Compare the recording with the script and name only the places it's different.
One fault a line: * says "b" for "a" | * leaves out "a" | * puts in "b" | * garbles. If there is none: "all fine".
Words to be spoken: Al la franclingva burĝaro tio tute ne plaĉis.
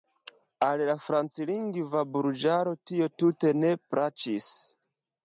all fine